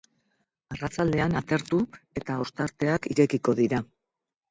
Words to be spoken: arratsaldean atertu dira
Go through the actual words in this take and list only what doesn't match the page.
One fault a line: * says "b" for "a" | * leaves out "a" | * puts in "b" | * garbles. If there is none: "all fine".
* puts in "eta ostarteak irekiko"